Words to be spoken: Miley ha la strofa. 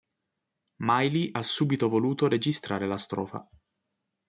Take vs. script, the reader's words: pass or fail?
fail